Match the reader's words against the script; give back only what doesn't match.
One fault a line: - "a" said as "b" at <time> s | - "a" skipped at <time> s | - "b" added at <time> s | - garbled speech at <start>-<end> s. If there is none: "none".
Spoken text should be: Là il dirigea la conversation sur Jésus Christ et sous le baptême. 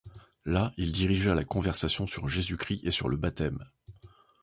- "sous" said as "sur" at 2.9 s